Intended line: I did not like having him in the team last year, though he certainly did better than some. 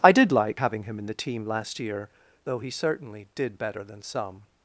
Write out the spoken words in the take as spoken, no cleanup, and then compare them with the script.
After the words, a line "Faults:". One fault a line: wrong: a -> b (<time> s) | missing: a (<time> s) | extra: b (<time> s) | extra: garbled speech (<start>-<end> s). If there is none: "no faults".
I did like having him in the team last year, though he certainly did better than some.
Faults:
missing: not (0.3 s)